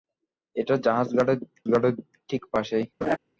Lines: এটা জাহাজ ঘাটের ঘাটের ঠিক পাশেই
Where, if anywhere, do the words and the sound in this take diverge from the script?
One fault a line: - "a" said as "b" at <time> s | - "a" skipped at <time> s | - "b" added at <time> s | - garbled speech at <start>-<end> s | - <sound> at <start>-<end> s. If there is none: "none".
- laugh at 3.0-3.2 s